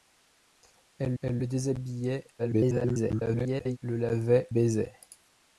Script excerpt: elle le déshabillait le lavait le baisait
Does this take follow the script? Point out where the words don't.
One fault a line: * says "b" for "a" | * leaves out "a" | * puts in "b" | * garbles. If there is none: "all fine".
* puts in "elle"
* garbles
* leaves out "le"